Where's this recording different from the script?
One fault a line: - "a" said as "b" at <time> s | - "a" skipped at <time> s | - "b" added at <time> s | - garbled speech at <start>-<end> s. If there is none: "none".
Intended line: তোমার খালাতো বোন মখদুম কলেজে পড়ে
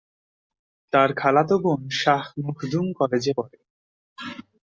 - "তোমার" said as "তার" at 0.9 s
- "শাহ" added at 2.0 s